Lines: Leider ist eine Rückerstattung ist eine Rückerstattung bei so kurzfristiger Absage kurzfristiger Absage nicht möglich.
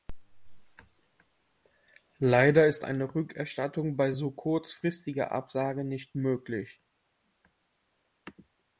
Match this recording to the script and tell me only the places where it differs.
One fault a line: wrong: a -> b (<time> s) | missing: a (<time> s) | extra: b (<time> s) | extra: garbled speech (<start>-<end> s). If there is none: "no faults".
missing: ist eine Rückerstattung (4.0 s)
missing: kurzfristiger Absage (5.8 s)